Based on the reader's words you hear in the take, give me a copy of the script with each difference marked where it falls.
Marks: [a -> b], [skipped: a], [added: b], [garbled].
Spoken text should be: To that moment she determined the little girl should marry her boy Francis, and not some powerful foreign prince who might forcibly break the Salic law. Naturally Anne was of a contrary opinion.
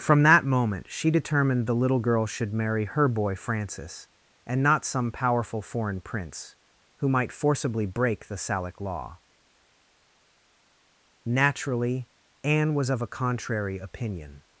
[To -> From] that moment she determined the little girl should marry her boy Francis, and not some powerful foreign prince who might forcibly break the Salic law. Naturally Anne was of a contrary opinion.